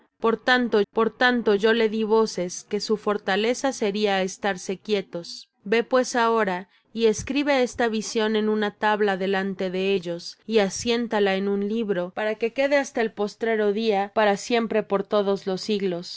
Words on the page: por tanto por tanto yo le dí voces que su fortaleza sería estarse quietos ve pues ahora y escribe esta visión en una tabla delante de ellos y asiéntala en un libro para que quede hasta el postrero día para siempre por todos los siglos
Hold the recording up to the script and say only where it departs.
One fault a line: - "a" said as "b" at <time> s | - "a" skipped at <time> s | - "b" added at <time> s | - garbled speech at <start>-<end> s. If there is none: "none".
none